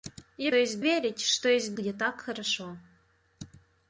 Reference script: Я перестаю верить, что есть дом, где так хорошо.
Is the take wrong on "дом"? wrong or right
wrong